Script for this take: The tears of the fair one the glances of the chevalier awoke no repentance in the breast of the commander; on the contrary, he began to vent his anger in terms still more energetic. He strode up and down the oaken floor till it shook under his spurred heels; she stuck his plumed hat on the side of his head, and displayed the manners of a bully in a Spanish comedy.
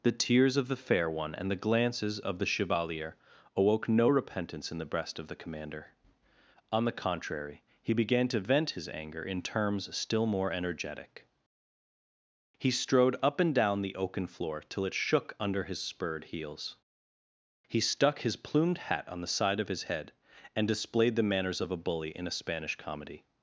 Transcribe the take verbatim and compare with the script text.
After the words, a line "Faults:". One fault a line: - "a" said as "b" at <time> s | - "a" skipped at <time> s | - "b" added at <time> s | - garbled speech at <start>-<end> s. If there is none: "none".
The tears of the fair one and the glances of the chevalier awoke no repentance in the breast of the commander; on the contrary, he began to vent his anger in terms still more energetic. He strode up and down the oaken floor till it shook under his spurred heels; he stuck his plumed hat on the side of his head, and displayed the manners of a bully in a Spanish comedy.
Faults:
- "and" added at 1.4 s
- "she" said as "he" at 17.7 s